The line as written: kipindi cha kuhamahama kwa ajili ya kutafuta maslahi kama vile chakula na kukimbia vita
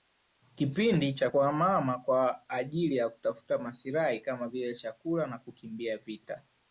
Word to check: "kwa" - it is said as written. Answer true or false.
true